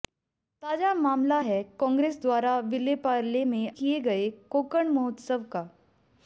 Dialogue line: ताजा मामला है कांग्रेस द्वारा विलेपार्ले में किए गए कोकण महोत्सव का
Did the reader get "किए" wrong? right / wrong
right